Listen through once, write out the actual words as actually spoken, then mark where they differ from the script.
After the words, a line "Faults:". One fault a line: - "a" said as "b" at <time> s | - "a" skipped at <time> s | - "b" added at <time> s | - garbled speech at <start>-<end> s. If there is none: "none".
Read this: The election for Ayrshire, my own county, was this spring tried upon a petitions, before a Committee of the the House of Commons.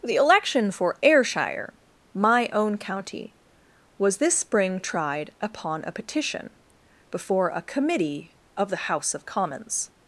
The election for Ayrshire, my own county, was this spring tried upon a petition, before a Committee of the House of Commons.
Faults:
- "petitions" said as "petition" at 5.9 s
- "the" skipped at 8.9 s